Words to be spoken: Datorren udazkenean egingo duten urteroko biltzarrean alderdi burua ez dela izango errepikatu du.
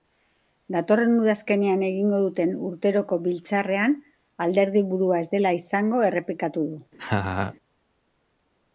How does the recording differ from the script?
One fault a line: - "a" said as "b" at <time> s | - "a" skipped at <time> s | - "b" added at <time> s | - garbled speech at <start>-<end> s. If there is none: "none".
none